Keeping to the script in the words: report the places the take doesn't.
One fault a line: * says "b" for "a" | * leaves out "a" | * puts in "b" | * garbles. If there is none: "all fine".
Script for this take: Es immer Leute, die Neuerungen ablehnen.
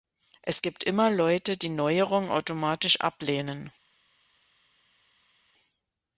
* puts in "gibt"
* puts in "automatisch"